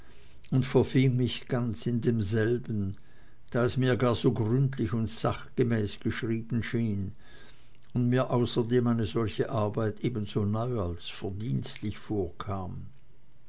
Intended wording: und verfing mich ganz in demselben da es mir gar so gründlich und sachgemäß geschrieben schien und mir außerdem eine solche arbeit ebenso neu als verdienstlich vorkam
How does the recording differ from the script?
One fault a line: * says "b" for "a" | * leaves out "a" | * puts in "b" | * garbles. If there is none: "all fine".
all fine